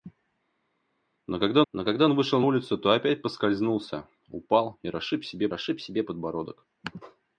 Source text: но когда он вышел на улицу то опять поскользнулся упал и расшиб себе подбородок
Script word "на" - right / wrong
wrong